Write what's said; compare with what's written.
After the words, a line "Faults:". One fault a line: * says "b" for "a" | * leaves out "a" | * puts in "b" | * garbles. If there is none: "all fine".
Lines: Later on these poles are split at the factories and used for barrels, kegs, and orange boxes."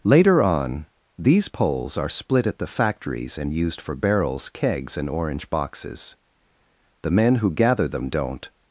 Later on these poles are split at the factories and used for barrels, kegs, and orange boxes." "The men who gather them don't
Faults:
* puts in "The men who gather them don't"